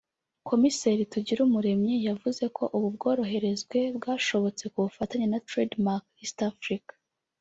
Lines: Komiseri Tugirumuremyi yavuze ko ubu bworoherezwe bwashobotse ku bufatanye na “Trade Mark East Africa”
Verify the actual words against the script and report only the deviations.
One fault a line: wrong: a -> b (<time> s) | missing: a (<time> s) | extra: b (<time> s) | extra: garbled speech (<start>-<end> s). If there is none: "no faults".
no faults